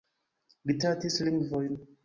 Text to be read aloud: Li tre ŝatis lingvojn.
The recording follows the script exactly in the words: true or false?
false